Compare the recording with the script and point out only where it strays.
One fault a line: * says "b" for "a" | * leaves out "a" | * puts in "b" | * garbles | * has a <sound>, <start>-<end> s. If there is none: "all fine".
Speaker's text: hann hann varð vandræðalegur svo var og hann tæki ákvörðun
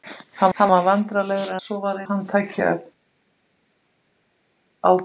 all fine